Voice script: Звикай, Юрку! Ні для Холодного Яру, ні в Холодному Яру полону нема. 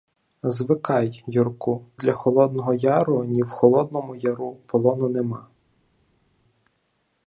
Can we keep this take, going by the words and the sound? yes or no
no